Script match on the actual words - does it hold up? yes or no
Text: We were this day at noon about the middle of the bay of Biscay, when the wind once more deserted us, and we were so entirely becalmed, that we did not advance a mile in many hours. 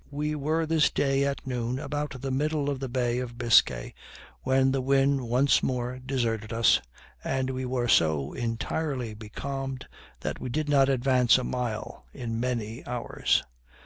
yes